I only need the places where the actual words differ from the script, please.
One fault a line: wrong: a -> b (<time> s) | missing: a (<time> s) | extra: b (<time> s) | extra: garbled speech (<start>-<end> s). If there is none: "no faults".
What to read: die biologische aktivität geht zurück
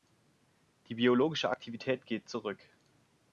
no faults